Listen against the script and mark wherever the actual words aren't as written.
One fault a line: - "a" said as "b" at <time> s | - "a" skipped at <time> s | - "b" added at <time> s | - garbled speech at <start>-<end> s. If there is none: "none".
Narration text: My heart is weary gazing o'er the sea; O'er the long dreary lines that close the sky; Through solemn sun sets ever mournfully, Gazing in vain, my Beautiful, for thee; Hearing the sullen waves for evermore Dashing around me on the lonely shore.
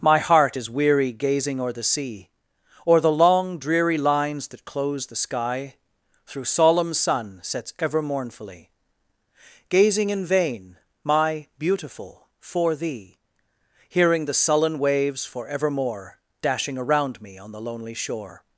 none